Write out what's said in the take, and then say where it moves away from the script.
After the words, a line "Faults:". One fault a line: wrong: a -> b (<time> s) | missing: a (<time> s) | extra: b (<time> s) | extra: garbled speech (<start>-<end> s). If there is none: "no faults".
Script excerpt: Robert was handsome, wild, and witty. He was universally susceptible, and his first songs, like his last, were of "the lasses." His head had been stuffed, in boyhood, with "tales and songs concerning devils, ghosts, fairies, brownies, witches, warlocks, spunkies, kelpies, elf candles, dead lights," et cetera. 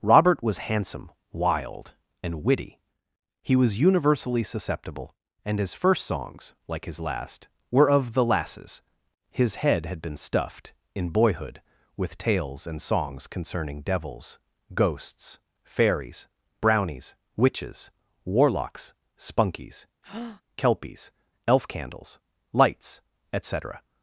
Robert was handsome, wild, and witty. He was universally susceptible, and his first songs, like his last, were of "the lasses." His head had been stuffed, in boyhood, with "tales and songs concerning devils, ghosts, fairies, brownies, witches, warlocks, spunkies, kelpies, elf candles, lights," et cetera.
Faults:
missing: dead (22.2 s)